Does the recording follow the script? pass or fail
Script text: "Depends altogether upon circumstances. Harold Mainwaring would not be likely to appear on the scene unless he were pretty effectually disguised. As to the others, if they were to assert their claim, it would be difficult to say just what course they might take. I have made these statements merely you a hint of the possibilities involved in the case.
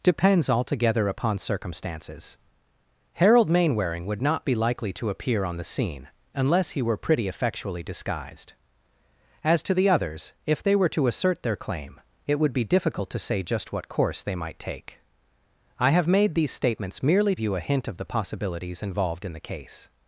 pass